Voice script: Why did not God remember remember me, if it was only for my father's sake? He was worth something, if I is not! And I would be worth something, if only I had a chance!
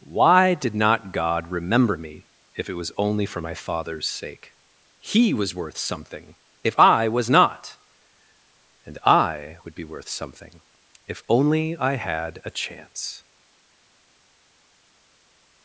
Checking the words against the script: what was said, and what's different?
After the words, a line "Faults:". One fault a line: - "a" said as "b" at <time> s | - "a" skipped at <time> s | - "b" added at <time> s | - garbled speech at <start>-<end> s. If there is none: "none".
Why did not God remember me, if it was only for my father's sake? He was worth something, if I was not! And I would be worth something, if only I had a chance!
Faults:
- "remember" skipped at 1.9 s
- "is" said as "was" at 7.1 s